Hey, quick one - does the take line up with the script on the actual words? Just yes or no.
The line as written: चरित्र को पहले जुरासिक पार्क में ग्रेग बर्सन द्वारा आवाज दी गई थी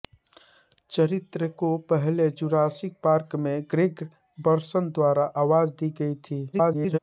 no